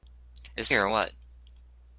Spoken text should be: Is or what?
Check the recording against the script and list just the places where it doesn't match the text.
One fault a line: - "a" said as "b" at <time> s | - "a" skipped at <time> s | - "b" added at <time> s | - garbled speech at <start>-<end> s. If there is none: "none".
none